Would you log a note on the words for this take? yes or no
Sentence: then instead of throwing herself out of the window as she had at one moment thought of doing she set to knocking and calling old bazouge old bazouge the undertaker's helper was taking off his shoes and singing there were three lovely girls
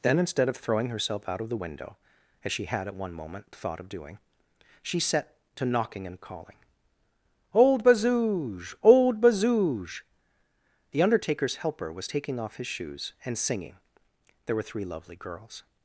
no